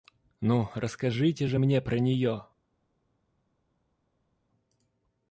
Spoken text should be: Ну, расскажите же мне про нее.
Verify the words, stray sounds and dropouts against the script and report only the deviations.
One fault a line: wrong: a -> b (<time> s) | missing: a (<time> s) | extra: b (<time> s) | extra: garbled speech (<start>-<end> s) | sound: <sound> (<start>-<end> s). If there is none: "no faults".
no faults